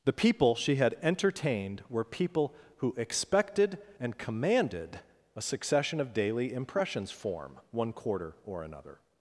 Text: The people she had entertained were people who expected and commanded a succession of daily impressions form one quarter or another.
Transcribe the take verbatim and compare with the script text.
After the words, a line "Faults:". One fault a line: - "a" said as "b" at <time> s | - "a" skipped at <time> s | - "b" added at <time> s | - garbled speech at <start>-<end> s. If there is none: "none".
The people she had entertained were people who expected and commanded a succession of daily impressions form one quarter or another.
Faults:
none